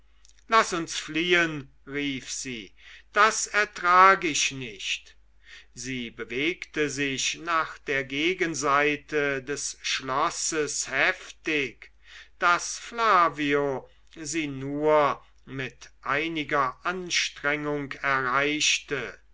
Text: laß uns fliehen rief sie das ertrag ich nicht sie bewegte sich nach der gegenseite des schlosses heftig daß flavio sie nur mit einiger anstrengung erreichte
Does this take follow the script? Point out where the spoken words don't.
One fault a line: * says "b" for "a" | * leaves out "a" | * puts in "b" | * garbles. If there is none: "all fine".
all fine